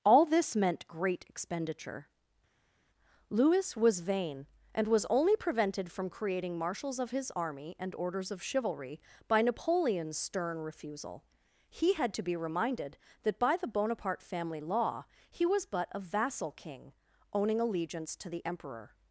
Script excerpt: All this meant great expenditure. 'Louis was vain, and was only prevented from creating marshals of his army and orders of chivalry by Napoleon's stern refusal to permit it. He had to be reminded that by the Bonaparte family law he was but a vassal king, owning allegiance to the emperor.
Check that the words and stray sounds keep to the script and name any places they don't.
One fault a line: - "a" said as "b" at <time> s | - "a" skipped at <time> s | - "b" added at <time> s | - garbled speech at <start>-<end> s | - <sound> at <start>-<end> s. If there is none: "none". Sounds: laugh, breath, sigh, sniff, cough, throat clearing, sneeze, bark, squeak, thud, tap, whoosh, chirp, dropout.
- "to permit it" skipped at 11.2 s